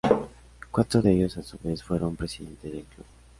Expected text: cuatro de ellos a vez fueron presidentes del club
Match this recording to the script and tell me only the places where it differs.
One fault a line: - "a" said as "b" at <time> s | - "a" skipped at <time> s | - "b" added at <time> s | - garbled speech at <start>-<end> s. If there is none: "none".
- "su" added at 1.4 s